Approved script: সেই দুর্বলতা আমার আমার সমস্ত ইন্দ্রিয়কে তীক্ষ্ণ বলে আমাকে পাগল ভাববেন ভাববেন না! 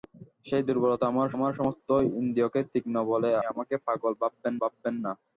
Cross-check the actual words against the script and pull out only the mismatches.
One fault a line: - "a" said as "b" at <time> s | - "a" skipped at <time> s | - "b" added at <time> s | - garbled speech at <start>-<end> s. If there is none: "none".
none